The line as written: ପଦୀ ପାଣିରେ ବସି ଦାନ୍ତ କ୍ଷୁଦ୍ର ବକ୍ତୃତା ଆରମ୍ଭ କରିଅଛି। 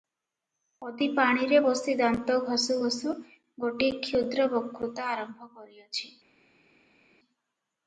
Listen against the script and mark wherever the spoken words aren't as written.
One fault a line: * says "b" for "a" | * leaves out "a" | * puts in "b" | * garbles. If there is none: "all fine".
* puts in "ଘଷୁ ଘଷୁ ଗୋଟିଏ"